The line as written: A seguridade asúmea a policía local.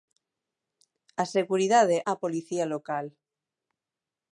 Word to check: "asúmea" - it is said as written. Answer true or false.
false